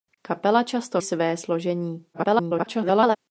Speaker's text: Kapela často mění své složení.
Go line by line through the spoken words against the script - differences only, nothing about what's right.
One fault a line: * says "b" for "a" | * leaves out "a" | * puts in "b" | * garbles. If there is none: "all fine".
* leaves out "mění"
* garbles